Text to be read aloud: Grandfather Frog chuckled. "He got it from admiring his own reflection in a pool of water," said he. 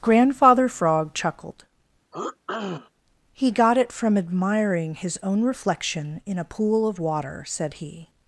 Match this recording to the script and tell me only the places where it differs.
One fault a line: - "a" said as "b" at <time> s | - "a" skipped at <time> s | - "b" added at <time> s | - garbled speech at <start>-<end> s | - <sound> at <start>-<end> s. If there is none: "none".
- throat clearing at 2.1-2.9 s